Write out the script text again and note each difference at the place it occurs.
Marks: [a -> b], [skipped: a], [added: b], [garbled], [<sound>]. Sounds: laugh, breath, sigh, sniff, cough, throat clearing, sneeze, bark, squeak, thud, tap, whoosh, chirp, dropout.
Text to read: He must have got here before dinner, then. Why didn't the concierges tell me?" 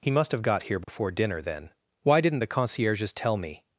He must have got here before [dropout] dinner, then. Why didn't the concierges tell me?"